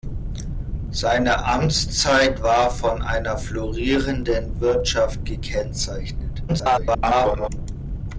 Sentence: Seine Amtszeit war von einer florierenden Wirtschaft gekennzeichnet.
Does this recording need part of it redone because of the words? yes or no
yes